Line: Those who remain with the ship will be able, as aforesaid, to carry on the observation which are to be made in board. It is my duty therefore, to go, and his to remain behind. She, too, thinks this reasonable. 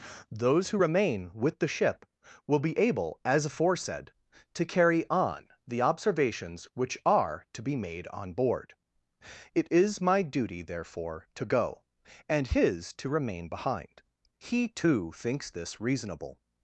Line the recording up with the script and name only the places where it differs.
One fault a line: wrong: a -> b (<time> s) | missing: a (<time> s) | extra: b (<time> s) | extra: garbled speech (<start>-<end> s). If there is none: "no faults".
wrong: observation -> observations (5.8 s)
wrong: in -> on (8.1 s)
wrong: She -> He (14.4 s)